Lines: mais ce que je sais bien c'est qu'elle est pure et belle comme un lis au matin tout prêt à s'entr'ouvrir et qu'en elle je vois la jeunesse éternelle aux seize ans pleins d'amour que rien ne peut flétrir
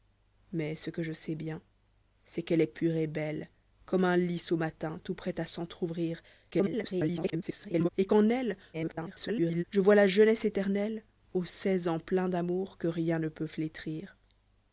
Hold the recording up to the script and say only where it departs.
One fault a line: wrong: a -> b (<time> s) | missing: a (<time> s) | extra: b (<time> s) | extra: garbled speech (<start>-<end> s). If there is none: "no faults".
extra: garbled speech (6.5-7.9 s)
extra: garbled speech (8.7-9.6 s)